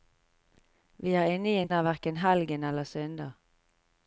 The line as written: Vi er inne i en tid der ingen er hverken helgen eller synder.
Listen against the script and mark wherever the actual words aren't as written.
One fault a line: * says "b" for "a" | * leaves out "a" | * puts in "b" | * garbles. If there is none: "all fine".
* leaves out "tid der ingen"